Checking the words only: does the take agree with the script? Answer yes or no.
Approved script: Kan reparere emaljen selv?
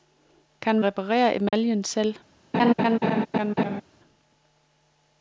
yes